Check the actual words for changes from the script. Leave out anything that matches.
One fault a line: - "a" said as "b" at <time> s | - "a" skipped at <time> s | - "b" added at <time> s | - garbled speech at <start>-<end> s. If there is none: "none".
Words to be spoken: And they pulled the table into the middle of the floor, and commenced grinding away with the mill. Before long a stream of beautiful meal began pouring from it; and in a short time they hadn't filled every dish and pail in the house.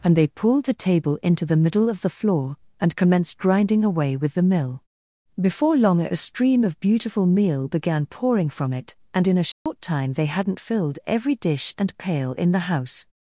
none